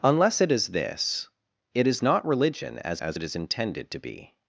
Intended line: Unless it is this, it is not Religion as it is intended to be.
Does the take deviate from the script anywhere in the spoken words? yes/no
yes